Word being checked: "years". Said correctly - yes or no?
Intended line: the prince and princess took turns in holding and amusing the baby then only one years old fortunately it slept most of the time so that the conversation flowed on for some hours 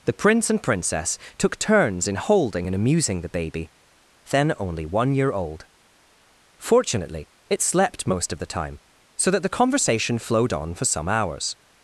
no